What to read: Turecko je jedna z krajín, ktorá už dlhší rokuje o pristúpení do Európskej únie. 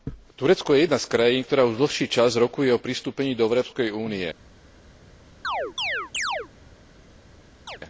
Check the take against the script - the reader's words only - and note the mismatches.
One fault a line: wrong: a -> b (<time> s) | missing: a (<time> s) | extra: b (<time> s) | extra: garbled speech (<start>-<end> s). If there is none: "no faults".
extra: čas (2.1 s)